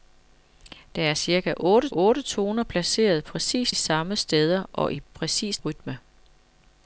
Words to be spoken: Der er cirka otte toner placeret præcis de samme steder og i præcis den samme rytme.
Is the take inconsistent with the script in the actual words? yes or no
yes